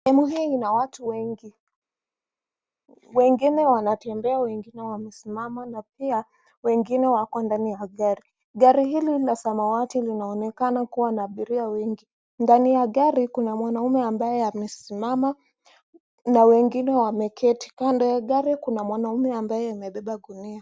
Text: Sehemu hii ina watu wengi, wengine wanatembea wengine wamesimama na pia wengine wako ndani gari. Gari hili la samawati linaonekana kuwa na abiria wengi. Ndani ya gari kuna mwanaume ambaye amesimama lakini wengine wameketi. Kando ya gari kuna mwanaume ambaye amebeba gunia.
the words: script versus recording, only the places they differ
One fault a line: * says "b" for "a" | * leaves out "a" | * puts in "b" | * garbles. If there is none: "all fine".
* puts in "ya"
* says "na" for "lakini"